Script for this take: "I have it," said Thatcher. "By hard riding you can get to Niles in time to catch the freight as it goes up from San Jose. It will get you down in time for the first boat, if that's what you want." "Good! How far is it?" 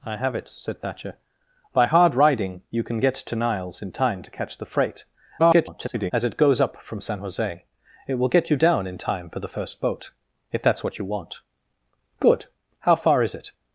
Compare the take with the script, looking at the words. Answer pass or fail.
fail